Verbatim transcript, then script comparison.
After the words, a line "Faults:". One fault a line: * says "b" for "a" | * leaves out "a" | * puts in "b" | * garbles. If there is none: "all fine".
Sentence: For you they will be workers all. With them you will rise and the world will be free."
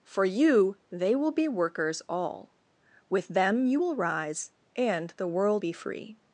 For you they will be workers all. With them you will rise and the world be free."
Faults:
* leaves out "will"